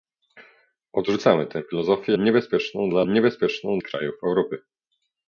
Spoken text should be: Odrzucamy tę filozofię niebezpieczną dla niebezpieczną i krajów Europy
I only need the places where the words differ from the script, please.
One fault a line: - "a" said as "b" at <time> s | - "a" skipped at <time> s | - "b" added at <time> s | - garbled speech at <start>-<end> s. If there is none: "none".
none